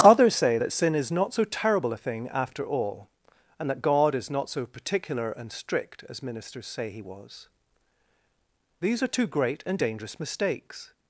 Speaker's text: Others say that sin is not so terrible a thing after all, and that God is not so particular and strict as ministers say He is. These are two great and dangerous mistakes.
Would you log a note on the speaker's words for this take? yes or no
yes